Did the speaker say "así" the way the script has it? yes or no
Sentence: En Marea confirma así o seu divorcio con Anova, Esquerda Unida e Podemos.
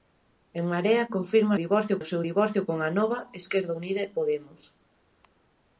no